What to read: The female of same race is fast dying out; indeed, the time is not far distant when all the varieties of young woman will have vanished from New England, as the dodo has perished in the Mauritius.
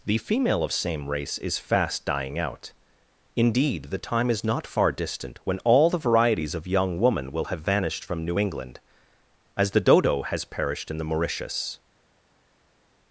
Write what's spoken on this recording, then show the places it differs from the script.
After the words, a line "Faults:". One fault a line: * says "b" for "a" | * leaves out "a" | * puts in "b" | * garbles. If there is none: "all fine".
The female of same race is fast dying out; indeed, the time is not far distant when all the varieties of young woman will have vanished from New England, as the dodo has perished in the Mauritius.
Faults:
all fine